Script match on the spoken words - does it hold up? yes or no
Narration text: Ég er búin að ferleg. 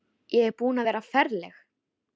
no